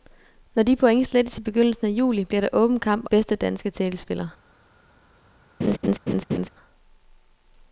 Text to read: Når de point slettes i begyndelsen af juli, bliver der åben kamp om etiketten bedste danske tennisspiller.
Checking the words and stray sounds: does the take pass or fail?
fail